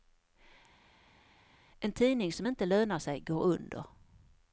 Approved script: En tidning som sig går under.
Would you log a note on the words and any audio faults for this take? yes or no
yes